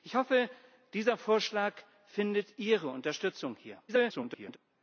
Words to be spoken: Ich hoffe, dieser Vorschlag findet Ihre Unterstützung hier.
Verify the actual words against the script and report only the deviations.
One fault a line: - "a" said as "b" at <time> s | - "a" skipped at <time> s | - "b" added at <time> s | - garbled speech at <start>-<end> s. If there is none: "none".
- garbled speech at 3.9-4.6 s